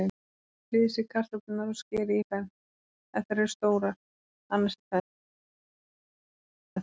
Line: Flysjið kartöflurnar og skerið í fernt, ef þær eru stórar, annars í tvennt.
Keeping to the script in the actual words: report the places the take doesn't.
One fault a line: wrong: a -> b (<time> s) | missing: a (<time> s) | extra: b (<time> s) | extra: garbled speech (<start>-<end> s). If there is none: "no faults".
no faults